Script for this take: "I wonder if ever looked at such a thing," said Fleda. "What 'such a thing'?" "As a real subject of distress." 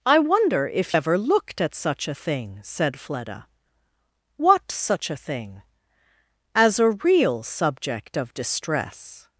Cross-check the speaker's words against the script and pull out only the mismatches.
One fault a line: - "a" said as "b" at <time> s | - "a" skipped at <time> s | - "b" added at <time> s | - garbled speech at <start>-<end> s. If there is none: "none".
none